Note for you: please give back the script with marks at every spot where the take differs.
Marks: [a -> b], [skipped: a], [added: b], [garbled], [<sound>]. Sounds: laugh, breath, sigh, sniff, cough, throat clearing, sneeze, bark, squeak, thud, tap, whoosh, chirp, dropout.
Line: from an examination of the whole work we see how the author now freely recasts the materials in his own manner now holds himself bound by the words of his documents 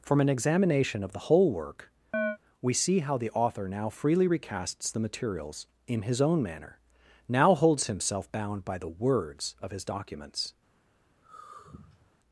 from an examination of the whole work [chirp] we see how the author now freely recasts the materials in his own manner now holds himself bound by the words of his documents [sigh]